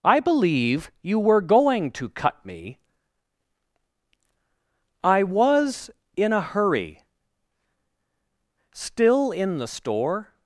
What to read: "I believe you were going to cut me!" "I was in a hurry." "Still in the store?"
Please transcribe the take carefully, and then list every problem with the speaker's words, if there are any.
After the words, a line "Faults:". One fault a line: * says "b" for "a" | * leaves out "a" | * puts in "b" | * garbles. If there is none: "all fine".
"I believe you were going to cut me!" "I was in a hurry." "Still in the store?"
Faults:
all fine